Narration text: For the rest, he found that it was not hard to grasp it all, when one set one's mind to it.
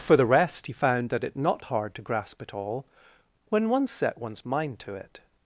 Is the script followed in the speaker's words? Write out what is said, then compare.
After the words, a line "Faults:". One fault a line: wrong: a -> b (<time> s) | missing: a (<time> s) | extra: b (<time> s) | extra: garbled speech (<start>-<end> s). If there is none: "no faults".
For the rest, he found that it not hard to grasp it all, when one set one's mind to it.
Faults:
missing: was (1.4 s)